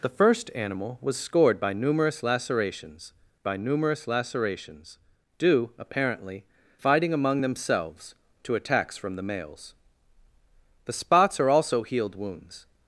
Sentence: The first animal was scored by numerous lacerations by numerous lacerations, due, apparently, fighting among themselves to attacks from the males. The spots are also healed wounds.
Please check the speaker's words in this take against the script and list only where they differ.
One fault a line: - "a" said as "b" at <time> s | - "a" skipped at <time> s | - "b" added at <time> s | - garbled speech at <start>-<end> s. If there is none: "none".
none